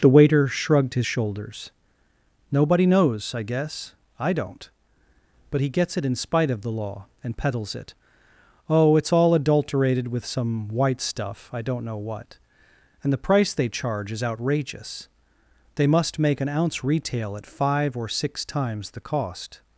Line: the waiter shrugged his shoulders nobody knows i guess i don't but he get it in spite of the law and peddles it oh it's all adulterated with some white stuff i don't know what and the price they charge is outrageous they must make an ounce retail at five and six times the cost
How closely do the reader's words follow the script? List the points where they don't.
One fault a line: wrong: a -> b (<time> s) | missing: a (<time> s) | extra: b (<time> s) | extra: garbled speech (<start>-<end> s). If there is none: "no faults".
wrong: get -> gets (5.7 s)
wrong: and -> or (18.0 s)